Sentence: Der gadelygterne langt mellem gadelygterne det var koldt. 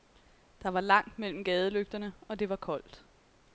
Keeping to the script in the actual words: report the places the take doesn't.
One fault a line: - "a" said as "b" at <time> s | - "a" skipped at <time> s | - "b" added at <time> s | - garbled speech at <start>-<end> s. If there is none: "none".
- "gadelygterne" said as "var" at 0.7 s
- "og" added at 2.2 s